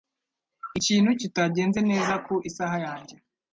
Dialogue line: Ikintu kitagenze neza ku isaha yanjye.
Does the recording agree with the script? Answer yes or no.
yes